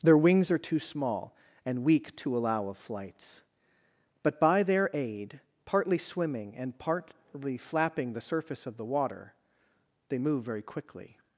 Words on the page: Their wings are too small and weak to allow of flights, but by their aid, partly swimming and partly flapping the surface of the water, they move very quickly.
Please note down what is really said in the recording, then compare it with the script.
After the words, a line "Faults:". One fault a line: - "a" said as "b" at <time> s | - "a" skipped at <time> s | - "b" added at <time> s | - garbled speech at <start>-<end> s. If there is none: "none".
Their wings are too small and weak to allow of flights, but by their aid, partly swimming and partly flapping the surface of the water, they move very quickly.
Faults:
none